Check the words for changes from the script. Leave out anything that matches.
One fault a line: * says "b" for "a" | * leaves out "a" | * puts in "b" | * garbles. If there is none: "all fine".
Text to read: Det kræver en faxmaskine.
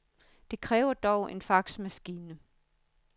* puts in "dog"